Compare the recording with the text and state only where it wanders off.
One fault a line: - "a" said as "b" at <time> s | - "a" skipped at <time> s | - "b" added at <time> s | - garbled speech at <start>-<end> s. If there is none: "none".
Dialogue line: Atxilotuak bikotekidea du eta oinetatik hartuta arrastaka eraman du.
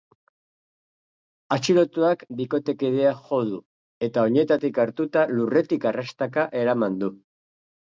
- "jo" added at 3.3 s
- "lurretik" added at 5.3 s